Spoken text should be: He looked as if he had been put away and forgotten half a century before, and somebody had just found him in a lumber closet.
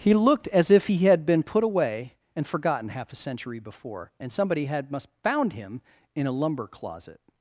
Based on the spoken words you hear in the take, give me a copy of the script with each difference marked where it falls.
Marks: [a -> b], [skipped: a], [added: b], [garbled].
He looked as if he had been put away and forgotten half a century before, and somebody had [just -> must] found him in a lumber closet.